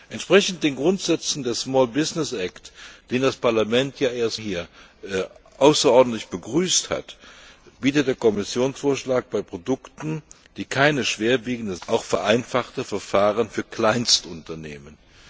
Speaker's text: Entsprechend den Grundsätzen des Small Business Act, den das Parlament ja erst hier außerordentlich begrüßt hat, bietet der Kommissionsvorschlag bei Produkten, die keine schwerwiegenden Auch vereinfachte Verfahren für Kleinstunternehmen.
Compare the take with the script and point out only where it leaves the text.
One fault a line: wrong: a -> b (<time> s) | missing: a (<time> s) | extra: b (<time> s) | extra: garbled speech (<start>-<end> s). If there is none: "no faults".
no faults